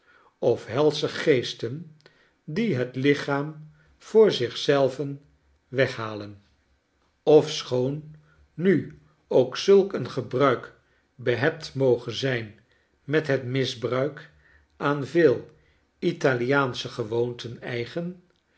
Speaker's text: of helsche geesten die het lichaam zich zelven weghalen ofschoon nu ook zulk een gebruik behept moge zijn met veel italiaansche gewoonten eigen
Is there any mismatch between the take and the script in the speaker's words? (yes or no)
yes